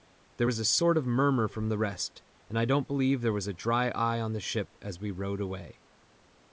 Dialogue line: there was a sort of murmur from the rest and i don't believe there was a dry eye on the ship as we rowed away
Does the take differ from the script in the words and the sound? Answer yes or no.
no